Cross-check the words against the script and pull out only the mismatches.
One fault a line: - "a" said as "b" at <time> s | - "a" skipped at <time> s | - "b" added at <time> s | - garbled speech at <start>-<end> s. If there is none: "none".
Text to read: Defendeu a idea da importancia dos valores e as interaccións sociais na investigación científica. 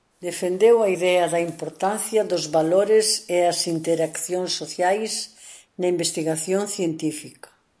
none